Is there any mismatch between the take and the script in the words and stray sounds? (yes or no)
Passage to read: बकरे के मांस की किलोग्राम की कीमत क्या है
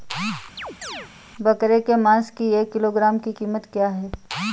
yes